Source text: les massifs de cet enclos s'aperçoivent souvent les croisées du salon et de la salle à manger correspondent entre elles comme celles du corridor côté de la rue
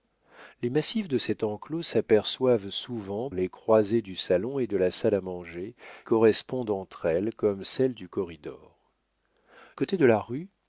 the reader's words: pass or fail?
pass